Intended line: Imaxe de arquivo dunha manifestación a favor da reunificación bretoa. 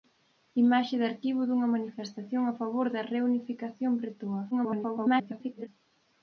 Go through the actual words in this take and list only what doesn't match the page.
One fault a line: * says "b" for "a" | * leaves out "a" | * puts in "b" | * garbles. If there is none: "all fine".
* garbles